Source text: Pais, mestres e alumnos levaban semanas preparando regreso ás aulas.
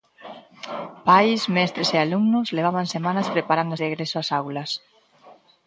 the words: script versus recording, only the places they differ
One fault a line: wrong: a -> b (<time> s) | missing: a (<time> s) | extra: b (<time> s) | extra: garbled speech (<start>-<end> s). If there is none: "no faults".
no faults